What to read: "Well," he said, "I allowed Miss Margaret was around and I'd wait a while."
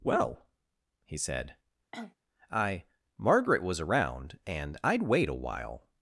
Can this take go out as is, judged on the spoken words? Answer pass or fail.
fail